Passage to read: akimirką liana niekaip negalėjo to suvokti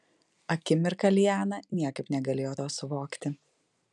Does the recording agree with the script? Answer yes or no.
yes